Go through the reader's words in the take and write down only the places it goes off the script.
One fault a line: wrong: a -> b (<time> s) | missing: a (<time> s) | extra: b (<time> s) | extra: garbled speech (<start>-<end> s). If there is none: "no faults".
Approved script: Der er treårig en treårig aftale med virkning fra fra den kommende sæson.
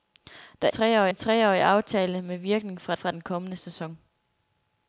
no faults